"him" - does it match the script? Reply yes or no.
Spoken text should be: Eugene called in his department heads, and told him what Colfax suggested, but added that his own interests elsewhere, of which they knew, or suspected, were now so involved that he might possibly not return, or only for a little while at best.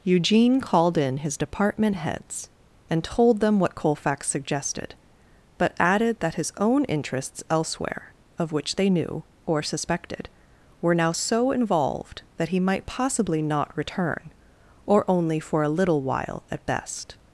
no